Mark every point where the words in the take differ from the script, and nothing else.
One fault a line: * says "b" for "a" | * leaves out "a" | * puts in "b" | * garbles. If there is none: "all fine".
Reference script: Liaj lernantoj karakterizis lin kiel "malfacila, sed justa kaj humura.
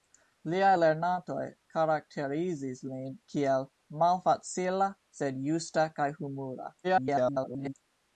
* garbles